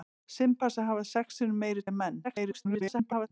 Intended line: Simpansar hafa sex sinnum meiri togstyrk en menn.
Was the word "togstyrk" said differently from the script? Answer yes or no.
yes